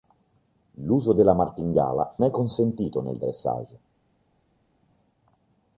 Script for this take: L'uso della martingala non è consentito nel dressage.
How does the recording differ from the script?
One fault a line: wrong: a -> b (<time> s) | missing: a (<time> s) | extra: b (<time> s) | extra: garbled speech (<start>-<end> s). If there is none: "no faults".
missing: non (2.2 s)